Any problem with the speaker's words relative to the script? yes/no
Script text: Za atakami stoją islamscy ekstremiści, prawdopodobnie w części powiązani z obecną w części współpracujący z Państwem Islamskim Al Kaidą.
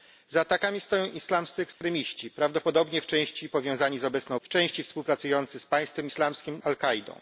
no